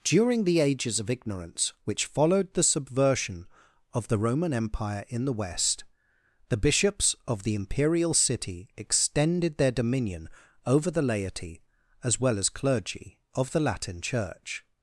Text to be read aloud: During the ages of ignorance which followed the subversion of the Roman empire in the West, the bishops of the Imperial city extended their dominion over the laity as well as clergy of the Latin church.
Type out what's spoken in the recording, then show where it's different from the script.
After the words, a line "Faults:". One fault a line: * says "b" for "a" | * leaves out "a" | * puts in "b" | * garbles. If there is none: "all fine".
During the ages of ignorance which followed the subversion of the Roman empire in the West, the bishops of the Imperial city extended their dominion over the laity as well as clergy of the Latin church.
Faults:
all fine